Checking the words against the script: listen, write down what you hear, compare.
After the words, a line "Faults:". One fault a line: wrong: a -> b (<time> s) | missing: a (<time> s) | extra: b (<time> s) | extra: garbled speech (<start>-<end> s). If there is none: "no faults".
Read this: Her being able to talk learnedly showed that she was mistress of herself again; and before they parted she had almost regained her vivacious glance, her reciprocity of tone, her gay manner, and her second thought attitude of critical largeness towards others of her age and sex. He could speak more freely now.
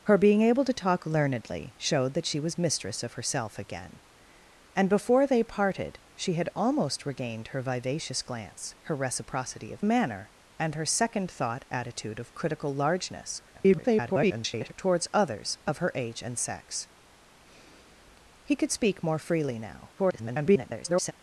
Her being able to talk learnedly showed that she was mistress of herself again; and before they parted she had almost regained her vivacious glance, her reciprocity of manner, and her second thought attitude of critical largeness [garbled] towards others of her age and sex. He could speak more freely now. [garbled]
Faults:
missing: tone her gay (9.8 s)
extra: garbled speech (13.5-14.7 s)
extra: garbled speech (20.0-21.1 s)